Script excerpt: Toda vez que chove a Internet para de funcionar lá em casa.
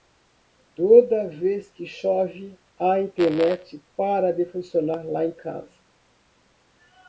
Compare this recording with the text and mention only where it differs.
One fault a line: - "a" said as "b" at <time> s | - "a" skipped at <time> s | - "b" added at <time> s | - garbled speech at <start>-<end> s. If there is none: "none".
none